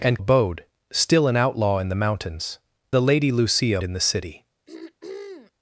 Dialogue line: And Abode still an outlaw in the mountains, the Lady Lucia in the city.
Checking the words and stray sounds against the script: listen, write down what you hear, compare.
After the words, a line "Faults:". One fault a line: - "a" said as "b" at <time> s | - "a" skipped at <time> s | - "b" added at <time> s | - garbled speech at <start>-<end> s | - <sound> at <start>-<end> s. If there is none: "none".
And Abode still an outlaw in the mountains, the Lady Lucia in the city.
Faults:
- throat clearing at 4.7-5.5 s